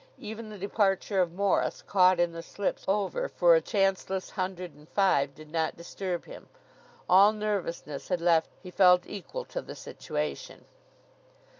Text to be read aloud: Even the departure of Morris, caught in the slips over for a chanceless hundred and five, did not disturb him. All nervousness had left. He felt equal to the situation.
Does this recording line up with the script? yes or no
yes